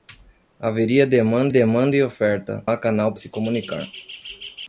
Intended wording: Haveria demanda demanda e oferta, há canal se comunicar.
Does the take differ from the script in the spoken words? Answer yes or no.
no